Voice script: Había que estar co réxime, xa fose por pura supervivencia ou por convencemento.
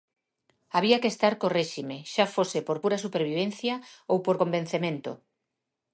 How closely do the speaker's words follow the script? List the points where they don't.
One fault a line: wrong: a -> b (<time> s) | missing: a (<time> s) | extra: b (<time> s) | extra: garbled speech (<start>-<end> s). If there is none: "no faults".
no faults